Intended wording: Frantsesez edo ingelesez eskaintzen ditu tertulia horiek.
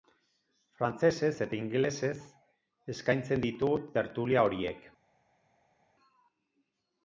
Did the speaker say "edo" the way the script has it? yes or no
no